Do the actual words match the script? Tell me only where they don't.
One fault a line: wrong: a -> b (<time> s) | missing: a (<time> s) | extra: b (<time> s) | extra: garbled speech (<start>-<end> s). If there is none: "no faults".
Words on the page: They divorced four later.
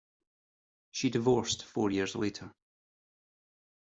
wrong: They -> She (0.9 s)
extra: years (1.9 s)